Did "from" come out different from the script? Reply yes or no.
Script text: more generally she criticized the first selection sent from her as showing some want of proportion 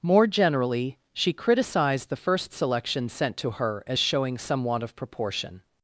yes